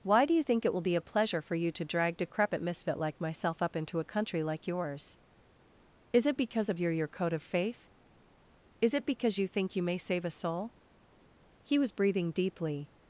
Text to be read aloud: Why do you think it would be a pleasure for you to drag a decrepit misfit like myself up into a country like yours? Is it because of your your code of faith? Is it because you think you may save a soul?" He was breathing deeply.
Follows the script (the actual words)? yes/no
no